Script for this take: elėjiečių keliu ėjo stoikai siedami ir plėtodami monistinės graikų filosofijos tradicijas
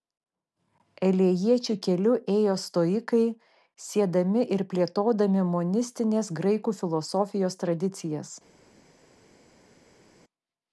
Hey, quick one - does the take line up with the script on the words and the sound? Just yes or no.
yes